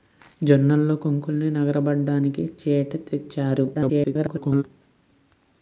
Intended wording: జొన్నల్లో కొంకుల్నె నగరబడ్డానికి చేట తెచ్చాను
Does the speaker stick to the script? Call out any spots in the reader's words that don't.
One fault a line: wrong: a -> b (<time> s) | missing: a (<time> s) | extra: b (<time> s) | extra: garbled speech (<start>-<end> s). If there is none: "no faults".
extra: garbled speech (3.7-4.6 s)